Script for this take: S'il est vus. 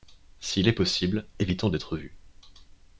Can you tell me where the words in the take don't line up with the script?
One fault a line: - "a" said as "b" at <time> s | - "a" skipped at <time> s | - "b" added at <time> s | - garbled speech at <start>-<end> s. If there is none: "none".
- "possible évitons d'être" added at 0.7 s